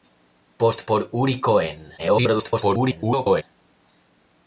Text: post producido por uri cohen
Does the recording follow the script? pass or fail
fail